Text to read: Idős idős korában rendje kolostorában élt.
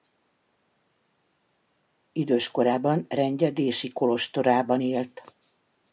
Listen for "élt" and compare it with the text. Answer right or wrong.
right